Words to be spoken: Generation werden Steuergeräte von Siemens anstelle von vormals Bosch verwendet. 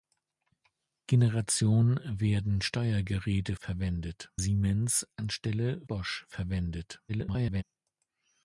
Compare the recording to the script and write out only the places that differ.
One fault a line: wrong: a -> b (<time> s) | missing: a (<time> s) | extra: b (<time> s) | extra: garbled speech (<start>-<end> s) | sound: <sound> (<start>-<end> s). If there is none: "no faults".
wrong: von -> verwendet (3.6 s)
missing: von vormals (5.8 s)
extra: garbled speech (7.1-7.6 s)